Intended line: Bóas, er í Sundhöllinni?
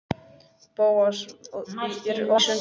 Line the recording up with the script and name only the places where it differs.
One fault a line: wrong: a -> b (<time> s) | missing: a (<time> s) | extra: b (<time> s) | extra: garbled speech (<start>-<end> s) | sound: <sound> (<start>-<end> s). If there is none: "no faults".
no faults